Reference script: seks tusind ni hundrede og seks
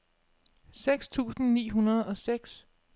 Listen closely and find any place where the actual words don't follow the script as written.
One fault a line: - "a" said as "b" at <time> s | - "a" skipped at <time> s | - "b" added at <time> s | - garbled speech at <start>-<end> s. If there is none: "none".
none